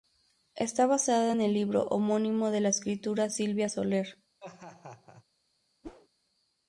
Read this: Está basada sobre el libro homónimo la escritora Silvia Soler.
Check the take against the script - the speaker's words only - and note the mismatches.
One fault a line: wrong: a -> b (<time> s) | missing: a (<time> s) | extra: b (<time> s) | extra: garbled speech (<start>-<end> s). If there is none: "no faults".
wrong: sobre -> en (1.3 s)
extra: de (2.5 s)